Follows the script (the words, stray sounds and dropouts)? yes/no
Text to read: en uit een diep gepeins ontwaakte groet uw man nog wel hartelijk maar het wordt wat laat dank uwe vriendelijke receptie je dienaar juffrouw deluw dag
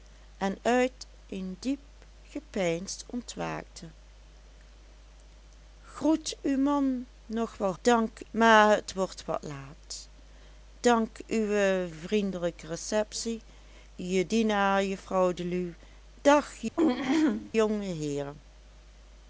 no